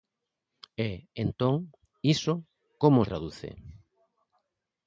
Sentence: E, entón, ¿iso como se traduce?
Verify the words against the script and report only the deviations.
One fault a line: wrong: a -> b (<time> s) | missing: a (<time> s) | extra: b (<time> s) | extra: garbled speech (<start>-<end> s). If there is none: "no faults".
missing: se (3.0 s)